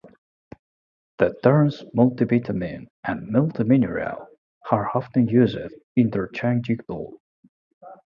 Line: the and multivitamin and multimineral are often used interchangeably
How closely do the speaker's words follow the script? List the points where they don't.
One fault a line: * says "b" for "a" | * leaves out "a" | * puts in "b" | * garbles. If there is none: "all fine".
* says "terms" for "and"